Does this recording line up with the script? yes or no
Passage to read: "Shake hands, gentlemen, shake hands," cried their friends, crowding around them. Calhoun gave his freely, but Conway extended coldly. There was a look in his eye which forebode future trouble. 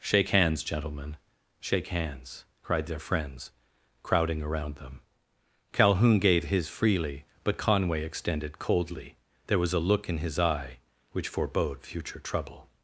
yes